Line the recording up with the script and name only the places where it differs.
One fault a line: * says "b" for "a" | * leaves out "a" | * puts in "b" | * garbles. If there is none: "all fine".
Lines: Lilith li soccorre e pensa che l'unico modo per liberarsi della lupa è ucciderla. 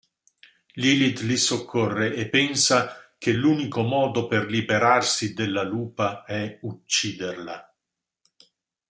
all fine